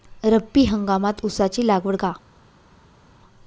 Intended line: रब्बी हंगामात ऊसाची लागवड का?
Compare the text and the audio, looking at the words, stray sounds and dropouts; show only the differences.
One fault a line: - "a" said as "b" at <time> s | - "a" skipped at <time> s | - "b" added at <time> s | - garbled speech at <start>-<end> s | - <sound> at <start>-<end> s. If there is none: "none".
none